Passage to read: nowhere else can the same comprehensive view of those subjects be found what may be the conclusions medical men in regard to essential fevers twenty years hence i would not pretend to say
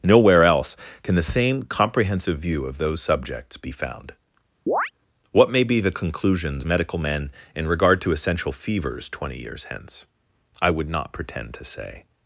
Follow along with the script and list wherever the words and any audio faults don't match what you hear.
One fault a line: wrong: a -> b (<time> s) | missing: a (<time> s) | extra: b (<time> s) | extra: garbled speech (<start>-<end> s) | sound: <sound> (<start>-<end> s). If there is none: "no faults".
sound: chirp (4.7-4.9 s)